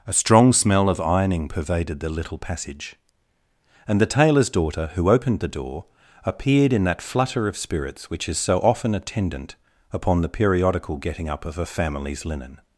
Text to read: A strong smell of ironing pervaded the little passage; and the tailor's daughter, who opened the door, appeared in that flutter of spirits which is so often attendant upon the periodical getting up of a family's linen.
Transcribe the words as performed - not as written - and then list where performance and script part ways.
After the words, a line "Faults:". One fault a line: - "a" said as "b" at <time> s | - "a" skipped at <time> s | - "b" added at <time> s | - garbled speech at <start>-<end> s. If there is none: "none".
A strong smell of ironing pervaded the little passage; and the tailor's daughter, who opened the door, appeared in that flutter of spirits which is so often attendant upon the periodical getting up of a family's linen.
Faults:
none